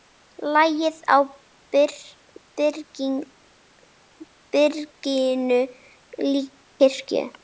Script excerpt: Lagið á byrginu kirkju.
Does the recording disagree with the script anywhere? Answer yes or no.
no